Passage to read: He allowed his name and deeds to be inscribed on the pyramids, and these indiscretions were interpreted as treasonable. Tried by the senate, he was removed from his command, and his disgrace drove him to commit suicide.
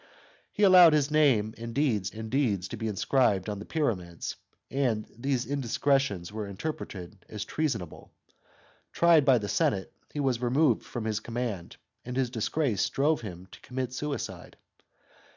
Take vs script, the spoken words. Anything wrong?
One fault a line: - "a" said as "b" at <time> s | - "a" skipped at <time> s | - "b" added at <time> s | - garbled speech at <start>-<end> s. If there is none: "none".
- "and deeds" added at 2.1 s